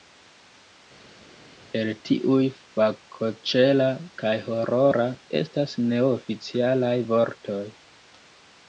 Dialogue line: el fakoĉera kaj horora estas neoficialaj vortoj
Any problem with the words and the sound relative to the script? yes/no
yes